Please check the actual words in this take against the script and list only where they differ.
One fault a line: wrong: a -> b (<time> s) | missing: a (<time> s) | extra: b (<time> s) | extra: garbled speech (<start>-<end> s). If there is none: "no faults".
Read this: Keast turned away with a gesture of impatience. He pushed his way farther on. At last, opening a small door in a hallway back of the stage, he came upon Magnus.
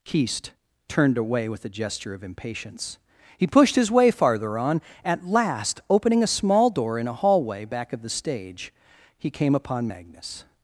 no faults